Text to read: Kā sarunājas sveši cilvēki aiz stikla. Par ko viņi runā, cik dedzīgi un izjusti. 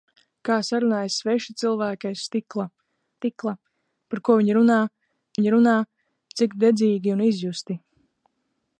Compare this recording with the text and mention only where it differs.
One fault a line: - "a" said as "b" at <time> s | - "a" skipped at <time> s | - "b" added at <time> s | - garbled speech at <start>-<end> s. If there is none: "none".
- "stikla" added at 3.2 s
- "viņi runā" added at 5.4 s